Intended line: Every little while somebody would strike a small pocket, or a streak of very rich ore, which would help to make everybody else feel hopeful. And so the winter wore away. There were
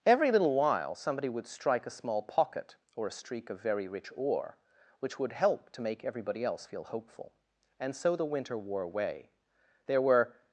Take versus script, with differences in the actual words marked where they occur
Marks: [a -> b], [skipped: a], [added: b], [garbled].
Every little while somebody would strike a small pocket, or a streak of very rich ore, which would help to make everybody else feel hopeful. And so the winter wore away. There were